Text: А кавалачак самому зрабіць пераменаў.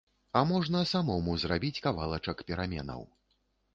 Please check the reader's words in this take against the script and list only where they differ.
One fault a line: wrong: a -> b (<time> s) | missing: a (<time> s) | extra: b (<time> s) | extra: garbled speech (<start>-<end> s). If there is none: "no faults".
wrong: кавалачак -> можна (0.5 s)
extra: кавалачак (1.9 s)